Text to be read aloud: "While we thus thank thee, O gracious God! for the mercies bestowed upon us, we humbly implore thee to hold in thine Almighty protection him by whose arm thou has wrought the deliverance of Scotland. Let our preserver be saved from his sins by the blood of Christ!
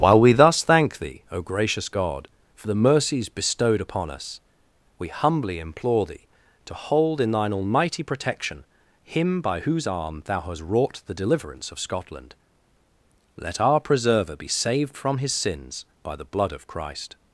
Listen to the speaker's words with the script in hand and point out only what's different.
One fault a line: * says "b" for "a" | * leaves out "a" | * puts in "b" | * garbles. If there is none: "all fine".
* says "hast" for "has"